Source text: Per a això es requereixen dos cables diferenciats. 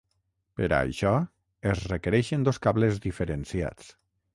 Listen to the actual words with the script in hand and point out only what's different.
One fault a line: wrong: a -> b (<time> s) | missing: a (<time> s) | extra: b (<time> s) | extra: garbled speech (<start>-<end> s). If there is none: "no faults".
no faults